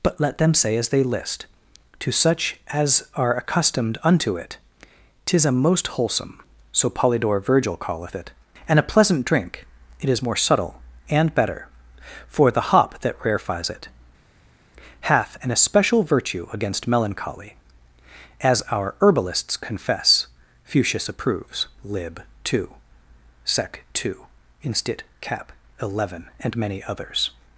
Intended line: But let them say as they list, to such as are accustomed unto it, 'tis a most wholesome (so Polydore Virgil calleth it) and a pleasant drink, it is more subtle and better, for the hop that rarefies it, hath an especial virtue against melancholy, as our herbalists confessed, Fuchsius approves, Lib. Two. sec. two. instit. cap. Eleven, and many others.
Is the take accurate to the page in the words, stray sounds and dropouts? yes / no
no